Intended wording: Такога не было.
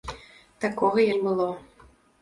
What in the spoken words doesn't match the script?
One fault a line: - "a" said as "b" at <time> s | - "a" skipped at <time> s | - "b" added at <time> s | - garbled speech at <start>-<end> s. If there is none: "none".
none